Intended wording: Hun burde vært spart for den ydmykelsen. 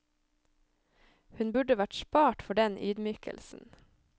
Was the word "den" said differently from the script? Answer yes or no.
no